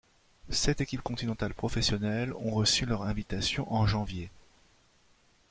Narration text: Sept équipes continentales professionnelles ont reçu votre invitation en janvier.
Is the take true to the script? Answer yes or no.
no